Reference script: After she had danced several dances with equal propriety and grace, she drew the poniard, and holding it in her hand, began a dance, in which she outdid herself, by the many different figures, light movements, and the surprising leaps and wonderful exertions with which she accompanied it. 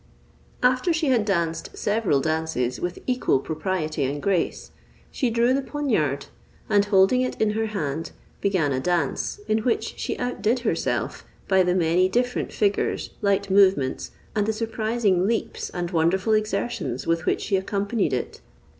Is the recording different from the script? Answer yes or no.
no